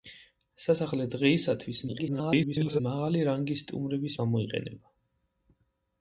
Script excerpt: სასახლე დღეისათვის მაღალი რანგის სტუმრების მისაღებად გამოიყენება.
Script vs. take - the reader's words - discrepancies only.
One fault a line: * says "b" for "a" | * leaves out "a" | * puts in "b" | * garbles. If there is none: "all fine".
* garbles
* leaves out "მისაღებად"